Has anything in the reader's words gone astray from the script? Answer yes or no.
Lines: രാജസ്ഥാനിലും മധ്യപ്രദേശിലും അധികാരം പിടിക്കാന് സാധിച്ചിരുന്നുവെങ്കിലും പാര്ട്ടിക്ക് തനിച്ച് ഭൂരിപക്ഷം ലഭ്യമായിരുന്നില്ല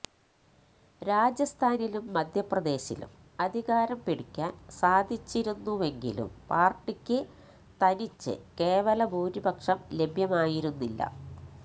yes